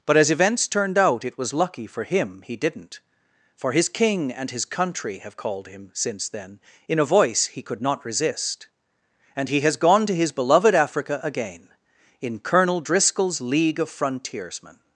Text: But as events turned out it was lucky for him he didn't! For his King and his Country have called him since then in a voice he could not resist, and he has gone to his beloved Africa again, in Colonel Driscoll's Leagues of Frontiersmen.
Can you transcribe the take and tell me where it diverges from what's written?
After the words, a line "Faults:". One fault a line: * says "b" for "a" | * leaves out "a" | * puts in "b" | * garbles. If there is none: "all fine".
But as events turned out it was lucky for him he didn't! For his King and his Country have called him since then in a voice he could not resist, and he has gone to his beloved Africa again, in Colonel Driscoll's League of Frontiersmen.
Faults:
* says "League" for "Leagues"